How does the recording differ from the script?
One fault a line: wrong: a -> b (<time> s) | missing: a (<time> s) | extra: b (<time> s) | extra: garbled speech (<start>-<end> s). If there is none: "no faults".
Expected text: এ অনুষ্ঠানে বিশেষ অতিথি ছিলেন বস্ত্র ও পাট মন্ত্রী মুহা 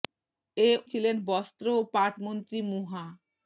missing: অনুষ্ঠানে বিশেষ অতিথি (0.7 s)